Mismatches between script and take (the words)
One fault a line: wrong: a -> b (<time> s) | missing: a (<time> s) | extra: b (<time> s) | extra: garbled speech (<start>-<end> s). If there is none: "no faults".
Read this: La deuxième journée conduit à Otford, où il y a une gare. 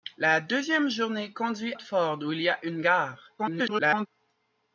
missing: à (1.8 s)
extra: garbled speech (3.4-4.1 s)